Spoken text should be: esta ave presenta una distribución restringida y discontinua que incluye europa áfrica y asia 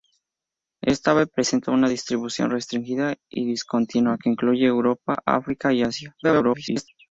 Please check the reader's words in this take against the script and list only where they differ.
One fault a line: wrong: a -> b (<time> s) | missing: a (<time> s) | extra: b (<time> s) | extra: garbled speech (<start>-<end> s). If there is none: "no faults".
extra: garbled speech (6.2-6.9 s)